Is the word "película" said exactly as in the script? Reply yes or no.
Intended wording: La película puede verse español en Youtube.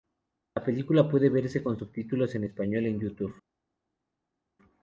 yes